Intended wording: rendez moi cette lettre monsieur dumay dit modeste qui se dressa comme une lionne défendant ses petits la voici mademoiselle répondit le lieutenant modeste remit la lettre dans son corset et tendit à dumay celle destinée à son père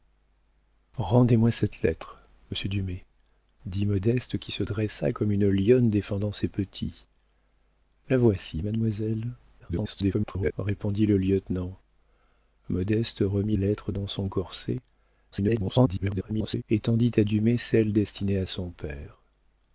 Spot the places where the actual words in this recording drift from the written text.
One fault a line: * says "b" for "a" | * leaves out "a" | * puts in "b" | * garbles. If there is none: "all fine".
* garbles
* leaves out "la"
* garbles